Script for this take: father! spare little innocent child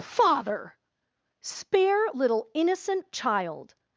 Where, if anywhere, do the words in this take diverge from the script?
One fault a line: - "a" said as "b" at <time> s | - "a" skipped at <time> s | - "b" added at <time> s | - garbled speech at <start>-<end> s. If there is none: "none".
none